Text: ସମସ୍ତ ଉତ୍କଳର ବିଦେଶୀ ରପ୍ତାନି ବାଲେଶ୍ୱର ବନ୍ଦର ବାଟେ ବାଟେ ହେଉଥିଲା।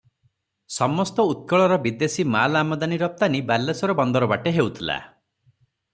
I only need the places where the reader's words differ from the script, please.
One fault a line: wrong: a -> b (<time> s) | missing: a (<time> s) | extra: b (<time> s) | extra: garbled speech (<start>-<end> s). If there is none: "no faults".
extra: ମାଲ ଆମଦାନି (2.4 s)
missing: ବାଟେ (4.5 s)